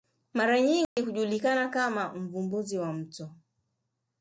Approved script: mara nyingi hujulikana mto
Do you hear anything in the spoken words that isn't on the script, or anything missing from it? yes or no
yes